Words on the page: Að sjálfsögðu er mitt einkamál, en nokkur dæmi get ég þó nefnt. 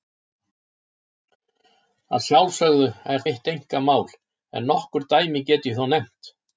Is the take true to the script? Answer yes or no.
yes